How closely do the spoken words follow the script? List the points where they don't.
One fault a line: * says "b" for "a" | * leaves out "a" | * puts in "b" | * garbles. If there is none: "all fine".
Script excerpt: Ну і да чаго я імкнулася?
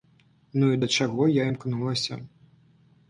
all fine